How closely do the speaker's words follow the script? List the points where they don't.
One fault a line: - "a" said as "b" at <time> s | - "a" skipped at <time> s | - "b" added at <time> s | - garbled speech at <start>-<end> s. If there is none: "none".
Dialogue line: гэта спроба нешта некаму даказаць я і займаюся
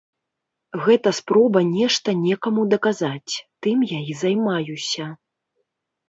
- "тым" added at 3.7 s